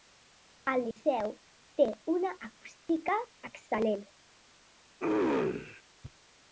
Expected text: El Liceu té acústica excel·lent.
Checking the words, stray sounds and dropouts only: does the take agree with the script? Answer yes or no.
no